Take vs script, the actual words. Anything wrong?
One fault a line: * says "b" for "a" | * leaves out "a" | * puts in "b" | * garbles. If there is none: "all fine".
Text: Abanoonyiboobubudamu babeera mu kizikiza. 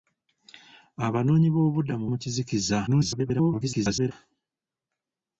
* leaves out "babeera"
* garbles